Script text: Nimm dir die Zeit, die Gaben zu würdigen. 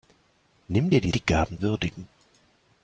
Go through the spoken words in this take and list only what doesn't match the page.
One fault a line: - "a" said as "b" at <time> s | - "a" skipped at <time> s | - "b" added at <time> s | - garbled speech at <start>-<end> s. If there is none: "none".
- "Zeit" skipped at 1.2 s
- "zu" skipped at 1.6 s